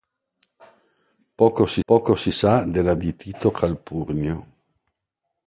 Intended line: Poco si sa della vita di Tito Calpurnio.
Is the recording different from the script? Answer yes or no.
yes